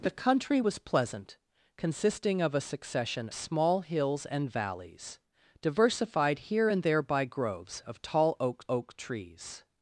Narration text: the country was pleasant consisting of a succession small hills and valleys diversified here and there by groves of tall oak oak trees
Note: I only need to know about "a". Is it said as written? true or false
true